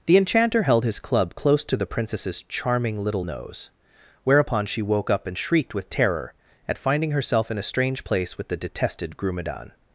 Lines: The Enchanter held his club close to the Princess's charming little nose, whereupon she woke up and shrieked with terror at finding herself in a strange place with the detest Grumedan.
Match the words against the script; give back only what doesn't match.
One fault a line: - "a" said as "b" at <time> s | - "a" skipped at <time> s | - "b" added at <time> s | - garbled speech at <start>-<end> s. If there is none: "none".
- "detest" said as "detested" at 8.6 s